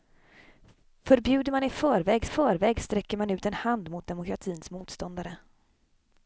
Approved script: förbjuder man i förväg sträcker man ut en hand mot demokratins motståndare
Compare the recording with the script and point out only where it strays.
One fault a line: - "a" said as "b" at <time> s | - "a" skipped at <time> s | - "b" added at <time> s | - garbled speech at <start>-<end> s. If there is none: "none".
- "förväg" added at 2.2 s